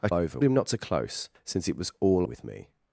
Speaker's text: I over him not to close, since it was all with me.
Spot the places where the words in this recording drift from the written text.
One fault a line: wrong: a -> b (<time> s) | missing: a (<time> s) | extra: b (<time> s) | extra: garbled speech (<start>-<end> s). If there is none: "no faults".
no faults